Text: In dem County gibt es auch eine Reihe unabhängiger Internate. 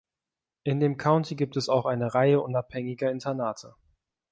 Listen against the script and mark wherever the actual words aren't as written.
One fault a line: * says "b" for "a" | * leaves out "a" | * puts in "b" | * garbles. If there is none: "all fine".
all fine